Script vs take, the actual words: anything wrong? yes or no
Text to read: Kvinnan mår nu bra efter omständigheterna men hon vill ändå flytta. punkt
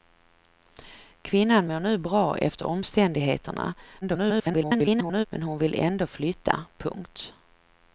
yes